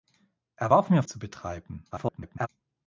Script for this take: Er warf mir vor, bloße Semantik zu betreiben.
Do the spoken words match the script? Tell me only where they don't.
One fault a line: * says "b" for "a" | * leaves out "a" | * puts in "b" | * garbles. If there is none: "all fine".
* leaves out "vor bloße Semantik"
* garbles